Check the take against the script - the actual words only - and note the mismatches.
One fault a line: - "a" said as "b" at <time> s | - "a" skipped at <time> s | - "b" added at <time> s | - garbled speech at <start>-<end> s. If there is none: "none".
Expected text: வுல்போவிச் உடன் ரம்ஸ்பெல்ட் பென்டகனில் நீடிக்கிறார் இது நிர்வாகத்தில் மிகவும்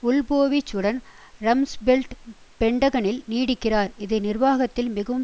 none